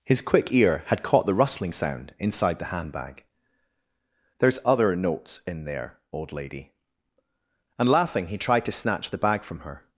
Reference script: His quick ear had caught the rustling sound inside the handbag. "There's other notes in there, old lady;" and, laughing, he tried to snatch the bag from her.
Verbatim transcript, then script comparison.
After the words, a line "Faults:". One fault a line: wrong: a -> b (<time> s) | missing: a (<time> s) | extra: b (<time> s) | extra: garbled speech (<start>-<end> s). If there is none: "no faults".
His quick ear had caught the rustling sound inside the handbag. "There's other notes in there, old lady;" and, laughing, he tried to snatch the bag from her.
Faults:
no faults